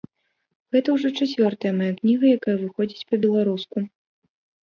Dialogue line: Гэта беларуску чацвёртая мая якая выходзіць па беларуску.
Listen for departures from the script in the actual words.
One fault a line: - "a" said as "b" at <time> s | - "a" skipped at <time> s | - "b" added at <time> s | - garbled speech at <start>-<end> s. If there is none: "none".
- "беларуску" said as "ўжо" at 0.9 s
- "кніга" added at 2.0 s